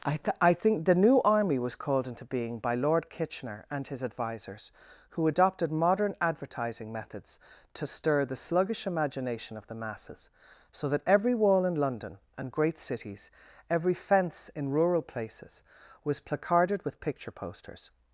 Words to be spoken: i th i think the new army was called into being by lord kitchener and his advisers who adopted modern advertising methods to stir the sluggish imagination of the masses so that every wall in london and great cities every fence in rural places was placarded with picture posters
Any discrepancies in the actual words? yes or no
no